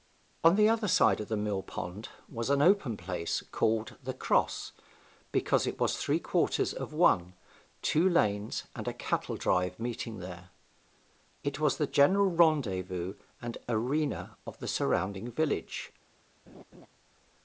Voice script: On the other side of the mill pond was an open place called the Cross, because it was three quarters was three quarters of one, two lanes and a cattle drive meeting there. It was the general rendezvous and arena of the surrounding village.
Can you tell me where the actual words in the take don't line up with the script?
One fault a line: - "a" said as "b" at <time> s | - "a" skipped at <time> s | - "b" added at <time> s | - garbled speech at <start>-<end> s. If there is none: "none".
- "was three quarters" skipped at 6.7 s